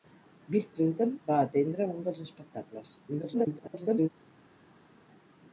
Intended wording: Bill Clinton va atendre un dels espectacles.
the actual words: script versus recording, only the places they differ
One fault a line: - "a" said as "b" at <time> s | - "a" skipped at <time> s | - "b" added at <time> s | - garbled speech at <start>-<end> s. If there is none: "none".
- garbled speech at 3.1-4.1 s